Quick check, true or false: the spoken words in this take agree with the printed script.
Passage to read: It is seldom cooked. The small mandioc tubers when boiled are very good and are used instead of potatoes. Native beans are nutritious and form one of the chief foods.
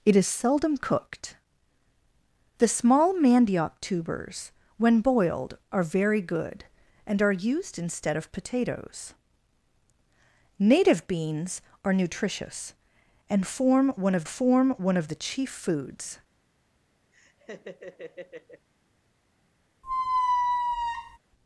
false